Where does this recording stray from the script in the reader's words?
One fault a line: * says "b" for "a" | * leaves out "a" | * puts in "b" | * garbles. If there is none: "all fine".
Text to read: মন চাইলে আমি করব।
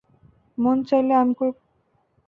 all fine